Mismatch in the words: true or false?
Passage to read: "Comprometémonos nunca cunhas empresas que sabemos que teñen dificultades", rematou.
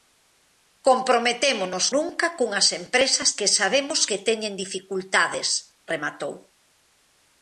false